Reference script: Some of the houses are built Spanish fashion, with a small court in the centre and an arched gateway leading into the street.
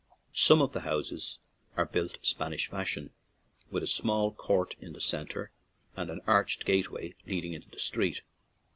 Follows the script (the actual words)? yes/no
yes